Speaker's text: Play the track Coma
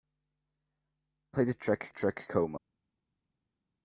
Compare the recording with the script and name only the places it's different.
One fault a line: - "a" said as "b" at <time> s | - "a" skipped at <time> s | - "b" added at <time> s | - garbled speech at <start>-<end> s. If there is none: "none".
- "track" added at 1.9 s